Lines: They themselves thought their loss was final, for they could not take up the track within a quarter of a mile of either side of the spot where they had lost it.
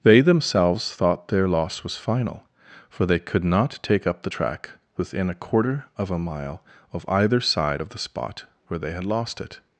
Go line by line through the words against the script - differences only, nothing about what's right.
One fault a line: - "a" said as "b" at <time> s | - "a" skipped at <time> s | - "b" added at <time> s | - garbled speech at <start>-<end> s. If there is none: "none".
none